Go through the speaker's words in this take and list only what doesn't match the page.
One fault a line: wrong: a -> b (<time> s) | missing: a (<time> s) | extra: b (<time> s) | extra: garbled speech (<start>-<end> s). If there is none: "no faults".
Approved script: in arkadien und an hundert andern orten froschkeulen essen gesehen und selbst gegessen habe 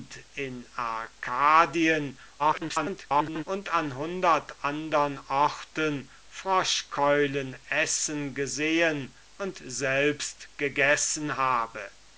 extra: garbled speech (2.4-3.4 s)